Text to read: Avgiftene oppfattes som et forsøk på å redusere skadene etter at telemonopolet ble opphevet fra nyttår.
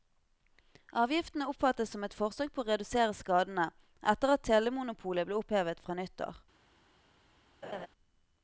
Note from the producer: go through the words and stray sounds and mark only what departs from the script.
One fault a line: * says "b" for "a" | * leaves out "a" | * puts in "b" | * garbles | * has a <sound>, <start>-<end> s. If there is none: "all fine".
* has a laugh, 7.6-7.9 s